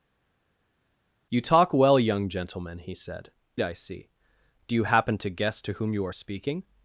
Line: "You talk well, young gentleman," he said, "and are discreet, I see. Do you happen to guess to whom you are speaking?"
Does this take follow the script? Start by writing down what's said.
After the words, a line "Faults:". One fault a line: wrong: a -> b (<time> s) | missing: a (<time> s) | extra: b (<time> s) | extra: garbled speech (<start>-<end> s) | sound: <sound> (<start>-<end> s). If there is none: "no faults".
"You talk well, young gentleman," he said, "I see. Do you happen to guess to whom you are speaking?"
Faults:
missing: and are discreet (3.3 s)